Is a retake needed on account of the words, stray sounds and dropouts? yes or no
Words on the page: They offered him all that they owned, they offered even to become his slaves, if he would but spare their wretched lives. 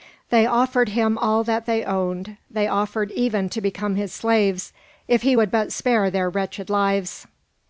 no